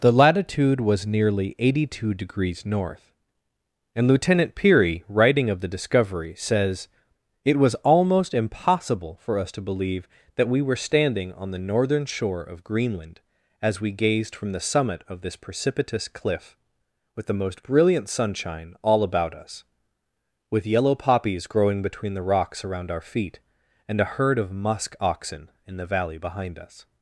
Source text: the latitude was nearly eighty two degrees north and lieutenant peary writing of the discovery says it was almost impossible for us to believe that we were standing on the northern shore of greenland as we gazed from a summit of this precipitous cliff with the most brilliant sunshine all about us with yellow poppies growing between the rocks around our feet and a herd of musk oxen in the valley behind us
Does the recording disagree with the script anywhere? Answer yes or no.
yes